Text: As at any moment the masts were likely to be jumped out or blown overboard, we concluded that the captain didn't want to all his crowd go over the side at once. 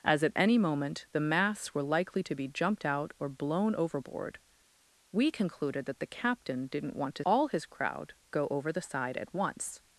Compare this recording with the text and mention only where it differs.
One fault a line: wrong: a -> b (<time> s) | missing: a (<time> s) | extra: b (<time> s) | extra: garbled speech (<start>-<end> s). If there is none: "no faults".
no faults